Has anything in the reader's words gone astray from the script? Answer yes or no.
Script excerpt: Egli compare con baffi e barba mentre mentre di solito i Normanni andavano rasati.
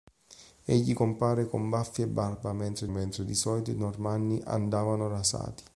no